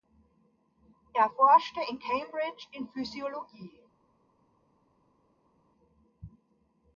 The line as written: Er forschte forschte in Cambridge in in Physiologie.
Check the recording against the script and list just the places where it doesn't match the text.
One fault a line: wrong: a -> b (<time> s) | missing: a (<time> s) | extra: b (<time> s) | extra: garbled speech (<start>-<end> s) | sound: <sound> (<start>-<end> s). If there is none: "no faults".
missing: forschte (1.8 s)
missing: in (2.9 s)